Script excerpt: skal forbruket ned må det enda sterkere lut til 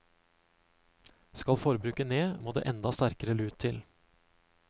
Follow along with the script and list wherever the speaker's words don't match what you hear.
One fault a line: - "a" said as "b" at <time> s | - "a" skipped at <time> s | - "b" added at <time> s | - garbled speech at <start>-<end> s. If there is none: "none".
none